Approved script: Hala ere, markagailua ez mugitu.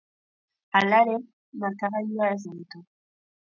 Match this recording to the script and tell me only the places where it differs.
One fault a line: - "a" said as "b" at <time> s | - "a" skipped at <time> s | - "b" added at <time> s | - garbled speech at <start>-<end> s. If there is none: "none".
none